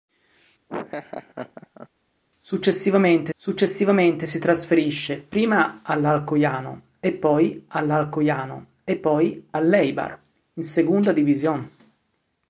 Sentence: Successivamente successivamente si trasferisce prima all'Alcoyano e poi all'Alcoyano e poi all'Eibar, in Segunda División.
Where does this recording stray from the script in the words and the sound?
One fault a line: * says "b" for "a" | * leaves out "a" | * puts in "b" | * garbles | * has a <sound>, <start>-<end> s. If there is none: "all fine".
* has a laugh, 0.7-1.9 s